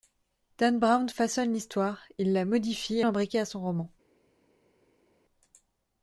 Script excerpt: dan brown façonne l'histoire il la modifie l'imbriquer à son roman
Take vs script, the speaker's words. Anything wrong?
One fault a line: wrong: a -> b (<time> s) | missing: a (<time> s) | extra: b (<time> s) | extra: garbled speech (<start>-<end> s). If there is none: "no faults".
no faults